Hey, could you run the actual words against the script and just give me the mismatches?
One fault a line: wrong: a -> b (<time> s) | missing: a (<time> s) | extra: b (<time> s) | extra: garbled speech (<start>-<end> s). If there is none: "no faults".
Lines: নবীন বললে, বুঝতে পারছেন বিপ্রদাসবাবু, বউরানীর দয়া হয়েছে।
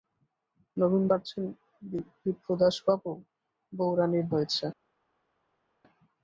missing: বললে বুঝতে (1.0 s)
missing: দয়া (4.3 s)